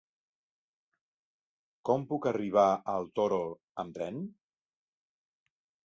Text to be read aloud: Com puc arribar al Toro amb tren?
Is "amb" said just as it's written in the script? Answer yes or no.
yes